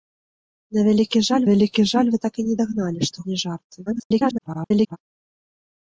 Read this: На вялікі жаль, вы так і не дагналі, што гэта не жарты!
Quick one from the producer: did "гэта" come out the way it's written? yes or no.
no